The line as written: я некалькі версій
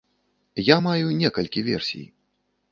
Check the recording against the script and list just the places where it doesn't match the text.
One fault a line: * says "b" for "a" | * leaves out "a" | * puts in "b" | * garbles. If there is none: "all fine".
* puts in "маю"